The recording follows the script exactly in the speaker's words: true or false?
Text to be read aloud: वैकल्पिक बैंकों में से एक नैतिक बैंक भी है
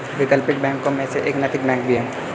true